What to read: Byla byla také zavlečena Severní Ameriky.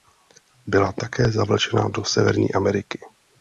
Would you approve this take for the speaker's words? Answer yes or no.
no